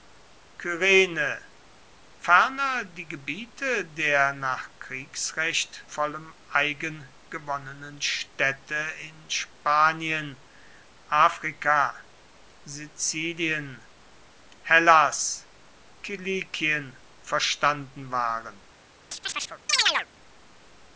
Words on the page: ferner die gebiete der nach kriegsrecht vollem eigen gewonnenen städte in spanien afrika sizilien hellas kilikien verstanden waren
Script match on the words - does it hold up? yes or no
yes